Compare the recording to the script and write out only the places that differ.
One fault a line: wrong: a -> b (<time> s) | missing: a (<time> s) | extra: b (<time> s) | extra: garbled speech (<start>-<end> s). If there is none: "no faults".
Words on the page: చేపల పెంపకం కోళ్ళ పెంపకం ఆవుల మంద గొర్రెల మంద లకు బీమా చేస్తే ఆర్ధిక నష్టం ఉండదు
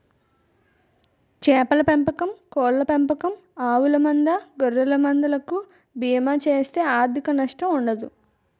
no faults